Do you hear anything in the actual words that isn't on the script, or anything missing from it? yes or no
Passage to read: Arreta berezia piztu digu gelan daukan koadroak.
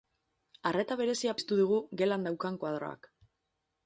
no